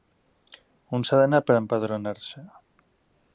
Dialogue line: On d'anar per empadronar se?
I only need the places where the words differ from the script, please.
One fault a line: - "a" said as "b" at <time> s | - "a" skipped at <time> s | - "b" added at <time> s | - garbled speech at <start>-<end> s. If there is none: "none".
- "s'ha" added at 1.1 s